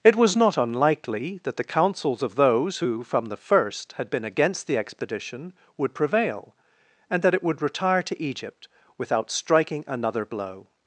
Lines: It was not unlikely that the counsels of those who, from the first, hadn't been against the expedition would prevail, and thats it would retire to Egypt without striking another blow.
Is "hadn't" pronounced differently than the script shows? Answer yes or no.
yes